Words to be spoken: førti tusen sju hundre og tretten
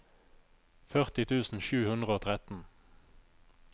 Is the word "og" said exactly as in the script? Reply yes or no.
yes